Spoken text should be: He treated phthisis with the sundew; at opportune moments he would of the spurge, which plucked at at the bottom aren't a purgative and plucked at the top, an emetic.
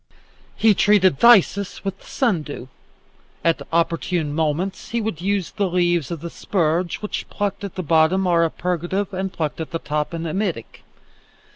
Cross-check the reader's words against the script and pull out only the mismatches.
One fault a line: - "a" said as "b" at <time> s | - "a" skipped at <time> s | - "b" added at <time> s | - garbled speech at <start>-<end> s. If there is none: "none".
- "use the leaves" added at 5.2 s
- "at" skipped at 7.8 s
- "aren't" said as "are" at 8.2 s